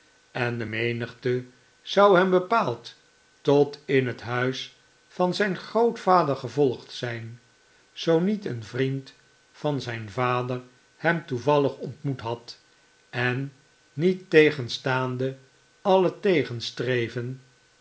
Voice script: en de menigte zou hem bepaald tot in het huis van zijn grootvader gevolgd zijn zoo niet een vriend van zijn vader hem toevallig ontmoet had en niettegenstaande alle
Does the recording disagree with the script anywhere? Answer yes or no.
no